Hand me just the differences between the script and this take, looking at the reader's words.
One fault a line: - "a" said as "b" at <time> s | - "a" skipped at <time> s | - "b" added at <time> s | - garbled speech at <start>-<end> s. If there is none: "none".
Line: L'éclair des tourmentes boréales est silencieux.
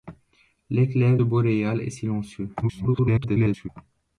- "des tourmentes" skipped at 1.2 s
- garbled speech at 2.6-3.7 s